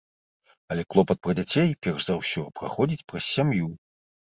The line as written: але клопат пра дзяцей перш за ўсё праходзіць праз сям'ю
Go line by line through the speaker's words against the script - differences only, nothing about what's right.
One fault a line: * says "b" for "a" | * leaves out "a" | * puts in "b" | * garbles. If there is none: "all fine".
all fine